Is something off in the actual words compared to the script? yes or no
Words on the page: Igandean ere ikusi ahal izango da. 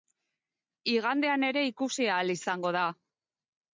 no